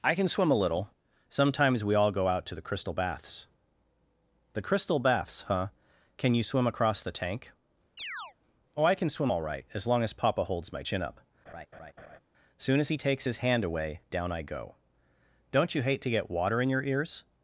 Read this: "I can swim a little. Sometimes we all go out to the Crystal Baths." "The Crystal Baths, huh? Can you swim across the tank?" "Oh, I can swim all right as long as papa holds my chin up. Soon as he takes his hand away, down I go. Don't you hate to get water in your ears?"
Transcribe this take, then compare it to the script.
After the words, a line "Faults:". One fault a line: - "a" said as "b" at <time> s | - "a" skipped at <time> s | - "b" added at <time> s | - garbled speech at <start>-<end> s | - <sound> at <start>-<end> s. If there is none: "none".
"I can swim a little. Sometimes we all go out to the Crystal Baths." "The Crystal Baths, huh? Can you swim across the tank?" "Oh, I can swim all right as long as papa holds my chin up. Soon as he takes his hand away, down I go. Don't you hate to get water in your ears?"
Faults:
- chirp at 8.0-8.3 s
- laugh at 11.5-12.2 s